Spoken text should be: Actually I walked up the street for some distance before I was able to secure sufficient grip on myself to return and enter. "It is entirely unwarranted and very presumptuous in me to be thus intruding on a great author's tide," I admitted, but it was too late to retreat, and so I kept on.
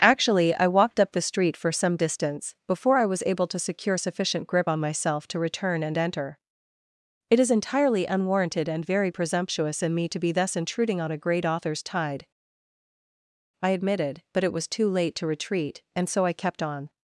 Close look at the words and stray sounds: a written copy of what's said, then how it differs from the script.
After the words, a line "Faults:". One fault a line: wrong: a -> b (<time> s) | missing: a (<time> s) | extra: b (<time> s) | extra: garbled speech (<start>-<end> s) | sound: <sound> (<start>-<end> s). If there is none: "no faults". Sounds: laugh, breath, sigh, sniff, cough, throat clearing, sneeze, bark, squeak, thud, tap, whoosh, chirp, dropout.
Actually I walked up the street for some distance before I was able to secure sufficient grip on myself to return and enter. "It is entirely unwarranted and very presumptuous in me to be thus intruding on a great author's tide," I admitted, but it was too late to retreat, and so I kept on.
Faults:
no faults